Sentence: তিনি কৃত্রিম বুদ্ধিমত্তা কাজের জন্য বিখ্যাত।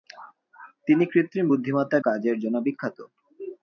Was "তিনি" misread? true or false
false